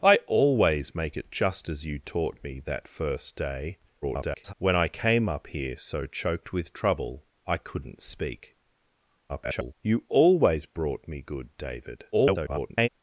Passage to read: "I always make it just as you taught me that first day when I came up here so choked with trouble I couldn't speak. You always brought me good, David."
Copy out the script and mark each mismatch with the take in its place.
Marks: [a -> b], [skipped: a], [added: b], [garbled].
"I always make it just as you taught me that first day [garbled] when I came up here so choked with trouble I couldn't speak. [garbled] You always brought me good, David." [garbled]